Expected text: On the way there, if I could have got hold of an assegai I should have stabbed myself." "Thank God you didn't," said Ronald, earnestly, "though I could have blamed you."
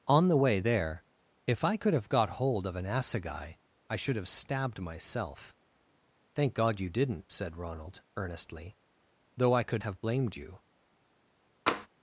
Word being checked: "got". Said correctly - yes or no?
yes